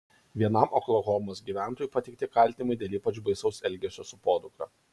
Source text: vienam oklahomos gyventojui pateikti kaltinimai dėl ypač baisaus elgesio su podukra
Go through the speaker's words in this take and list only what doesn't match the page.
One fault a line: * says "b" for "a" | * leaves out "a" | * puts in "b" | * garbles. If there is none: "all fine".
all fine